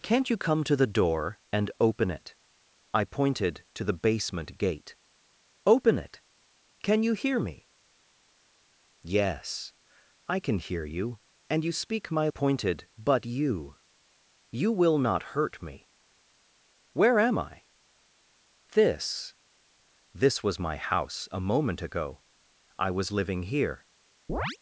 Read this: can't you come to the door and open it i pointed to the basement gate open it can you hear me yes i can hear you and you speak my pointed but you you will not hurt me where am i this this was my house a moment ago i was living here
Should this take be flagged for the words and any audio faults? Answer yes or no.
yes